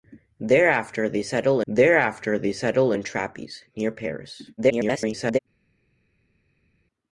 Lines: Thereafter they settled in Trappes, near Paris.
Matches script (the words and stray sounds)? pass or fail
fail